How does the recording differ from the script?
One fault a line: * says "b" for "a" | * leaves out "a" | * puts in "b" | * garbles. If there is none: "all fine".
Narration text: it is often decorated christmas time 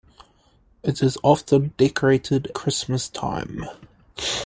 all fine